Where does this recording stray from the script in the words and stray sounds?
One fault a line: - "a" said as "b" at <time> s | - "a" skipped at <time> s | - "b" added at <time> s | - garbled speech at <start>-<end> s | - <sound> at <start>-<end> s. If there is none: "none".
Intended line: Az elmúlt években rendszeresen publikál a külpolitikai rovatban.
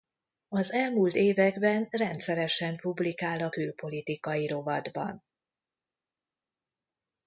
none